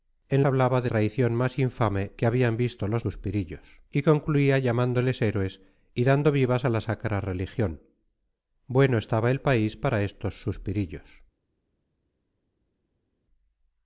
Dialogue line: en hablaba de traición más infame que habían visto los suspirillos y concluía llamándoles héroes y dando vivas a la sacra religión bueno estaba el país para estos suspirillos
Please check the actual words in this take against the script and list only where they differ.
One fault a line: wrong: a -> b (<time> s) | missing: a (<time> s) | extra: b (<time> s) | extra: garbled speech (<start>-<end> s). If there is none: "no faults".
no faults